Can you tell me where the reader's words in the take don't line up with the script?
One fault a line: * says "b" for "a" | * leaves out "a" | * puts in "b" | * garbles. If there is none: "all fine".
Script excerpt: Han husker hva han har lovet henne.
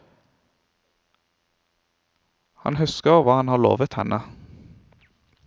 all fine